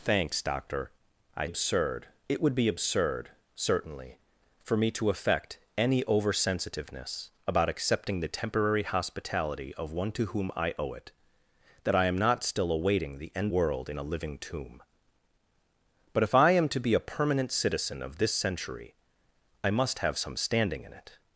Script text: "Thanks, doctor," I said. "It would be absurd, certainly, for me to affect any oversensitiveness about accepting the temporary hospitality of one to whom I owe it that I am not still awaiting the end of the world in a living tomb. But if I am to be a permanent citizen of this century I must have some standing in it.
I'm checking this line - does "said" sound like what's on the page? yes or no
no